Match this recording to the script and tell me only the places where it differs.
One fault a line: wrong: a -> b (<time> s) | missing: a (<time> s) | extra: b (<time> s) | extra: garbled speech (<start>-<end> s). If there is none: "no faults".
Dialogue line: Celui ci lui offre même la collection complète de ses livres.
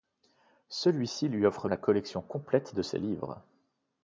missing: même (1.7 s)